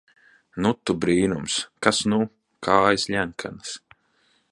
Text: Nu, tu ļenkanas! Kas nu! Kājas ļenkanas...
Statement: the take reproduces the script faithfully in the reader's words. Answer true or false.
false